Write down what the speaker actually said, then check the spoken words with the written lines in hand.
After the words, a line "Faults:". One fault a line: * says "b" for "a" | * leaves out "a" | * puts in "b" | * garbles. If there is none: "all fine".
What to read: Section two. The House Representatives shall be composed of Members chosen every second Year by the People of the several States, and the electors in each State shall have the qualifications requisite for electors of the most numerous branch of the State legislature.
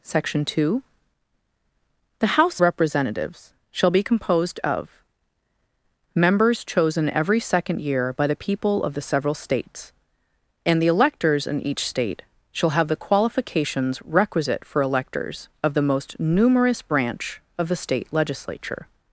Section two. The House Representatives shall be composed of Members chosen every second Year by the People of the several States, and the electors in each State shall have the qualifications requisite for electors of the most numerous branch of the State legislature.
Faults:
all fine